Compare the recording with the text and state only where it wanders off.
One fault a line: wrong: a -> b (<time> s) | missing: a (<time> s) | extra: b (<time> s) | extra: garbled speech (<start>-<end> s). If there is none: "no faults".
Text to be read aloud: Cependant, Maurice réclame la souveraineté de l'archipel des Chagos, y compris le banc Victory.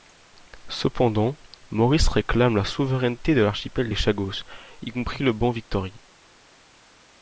no faults